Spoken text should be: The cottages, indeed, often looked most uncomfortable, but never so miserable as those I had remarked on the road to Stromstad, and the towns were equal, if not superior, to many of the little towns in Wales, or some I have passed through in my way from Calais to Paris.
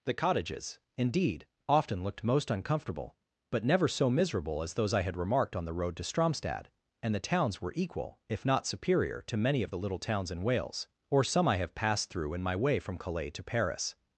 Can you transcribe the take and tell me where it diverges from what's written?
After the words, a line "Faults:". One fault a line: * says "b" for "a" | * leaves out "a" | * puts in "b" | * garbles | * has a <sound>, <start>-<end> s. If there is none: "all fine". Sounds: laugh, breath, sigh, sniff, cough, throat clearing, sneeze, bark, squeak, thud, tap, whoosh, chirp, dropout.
The cottages, indeed, often looked most uncomfortable, but never so miserable as those I had remarked on the road to Stromstad, and the towns were equal, if not superior, to many of the little towns in Wales, or some I have passed through in my way from Calais to Paris.
Faults:
all fine